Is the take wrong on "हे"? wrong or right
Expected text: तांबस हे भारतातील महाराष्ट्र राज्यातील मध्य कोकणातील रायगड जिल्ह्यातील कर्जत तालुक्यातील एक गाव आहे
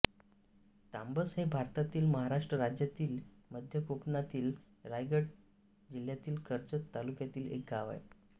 right